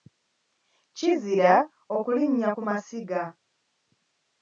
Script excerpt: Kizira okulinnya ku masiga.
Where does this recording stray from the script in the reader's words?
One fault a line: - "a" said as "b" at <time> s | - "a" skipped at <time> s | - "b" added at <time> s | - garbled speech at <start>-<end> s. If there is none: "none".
none